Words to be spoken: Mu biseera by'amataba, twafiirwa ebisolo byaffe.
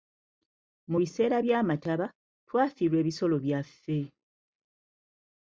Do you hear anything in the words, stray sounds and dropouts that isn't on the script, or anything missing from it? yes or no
no